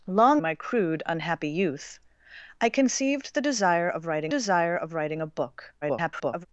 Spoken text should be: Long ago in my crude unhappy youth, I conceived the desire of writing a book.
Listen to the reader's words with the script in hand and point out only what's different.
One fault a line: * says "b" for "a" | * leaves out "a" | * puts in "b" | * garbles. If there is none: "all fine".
* leaves out "ago in"
* puts in "desire of writing"
* garbles